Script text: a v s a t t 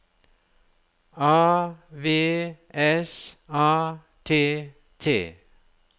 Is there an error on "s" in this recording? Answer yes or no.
no